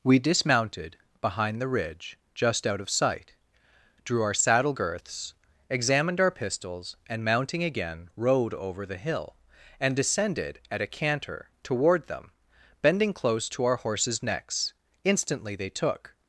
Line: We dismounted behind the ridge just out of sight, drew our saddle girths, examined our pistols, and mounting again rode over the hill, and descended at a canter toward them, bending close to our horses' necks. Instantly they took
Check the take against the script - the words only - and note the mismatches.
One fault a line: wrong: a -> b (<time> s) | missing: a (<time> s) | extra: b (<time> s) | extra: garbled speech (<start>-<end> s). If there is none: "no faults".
no faults